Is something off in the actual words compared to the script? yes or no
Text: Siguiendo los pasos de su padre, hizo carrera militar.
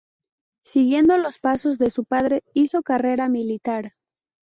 no